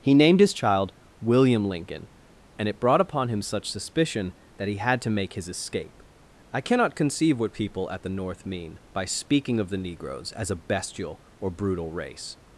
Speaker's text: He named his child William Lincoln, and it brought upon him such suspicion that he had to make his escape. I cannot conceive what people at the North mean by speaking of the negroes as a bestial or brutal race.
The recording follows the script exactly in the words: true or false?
true